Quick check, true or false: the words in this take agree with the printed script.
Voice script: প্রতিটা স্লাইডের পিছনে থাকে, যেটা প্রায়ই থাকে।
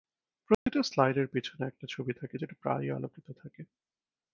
false